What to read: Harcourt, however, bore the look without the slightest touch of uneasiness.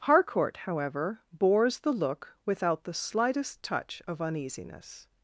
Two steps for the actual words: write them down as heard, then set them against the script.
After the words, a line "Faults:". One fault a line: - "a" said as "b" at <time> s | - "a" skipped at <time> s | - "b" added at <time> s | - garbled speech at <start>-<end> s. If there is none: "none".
Harcourt, however, bores the look without the slightest touch of uneasiness.
Faults:
- "bore" said as "bores" at 1.3 s